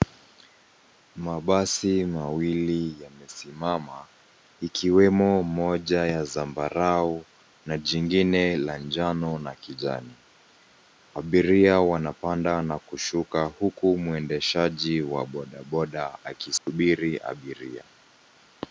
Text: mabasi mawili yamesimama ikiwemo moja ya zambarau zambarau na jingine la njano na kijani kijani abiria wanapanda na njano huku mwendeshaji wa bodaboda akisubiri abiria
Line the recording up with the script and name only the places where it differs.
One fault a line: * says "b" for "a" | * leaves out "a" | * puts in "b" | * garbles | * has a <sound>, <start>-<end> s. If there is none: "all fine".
* leaves out "zambarau"
* leaves out "kijani"
* says "kushuka" for "njano"
* has a dropout, 16.6-16.7 s